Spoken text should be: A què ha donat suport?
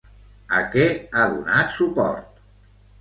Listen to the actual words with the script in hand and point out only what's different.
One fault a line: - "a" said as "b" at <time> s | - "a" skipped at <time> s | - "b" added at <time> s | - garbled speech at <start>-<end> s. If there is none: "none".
none